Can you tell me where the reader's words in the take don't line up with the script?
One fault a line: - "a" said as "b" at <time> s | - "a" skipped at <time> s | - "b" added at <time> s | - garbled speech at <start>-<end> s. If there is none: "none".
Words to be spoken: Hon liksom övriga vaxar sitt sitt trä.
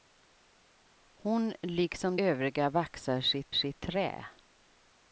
none